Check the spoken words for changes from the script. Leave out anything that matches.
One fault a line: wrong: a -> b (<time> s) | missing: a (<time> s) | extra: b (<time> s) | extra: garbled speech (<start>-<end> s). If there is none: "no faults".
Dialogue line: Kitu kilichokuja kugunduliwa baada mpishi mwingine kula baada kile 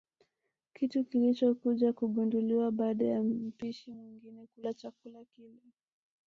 extra: ya (3.0 s)
wrong: baada -> chakula (4.7 s)